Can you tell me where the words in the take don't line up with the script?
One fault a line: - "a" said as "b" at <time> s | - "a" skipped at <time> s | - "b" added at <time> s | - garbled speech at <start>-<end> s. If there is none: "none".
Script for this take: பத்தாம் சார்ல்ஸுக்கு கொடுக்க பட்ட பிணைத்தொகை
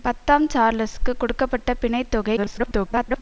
- garbled speech at 2.4-3.2 s